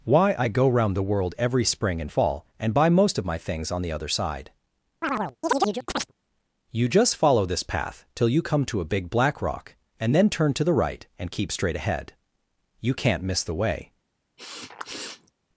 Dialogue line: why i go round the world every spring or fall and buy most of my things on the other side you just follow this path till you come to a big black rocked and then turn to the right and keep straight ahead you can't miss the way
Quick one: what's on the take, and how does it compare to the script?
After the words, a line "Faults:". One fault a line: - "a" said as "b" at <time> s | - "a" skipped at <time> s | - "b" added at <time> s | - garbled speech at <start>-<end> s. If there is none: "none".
why i go round the world every spring and fall and buy most of my things on the other side you just follow this path till you come to a big black rock and then turn to the right and keep straight ahead you can't miss the way
Faults:
- "or" said as "and" at 2.0 s
- "rocked" said as "rock" at 9.4 s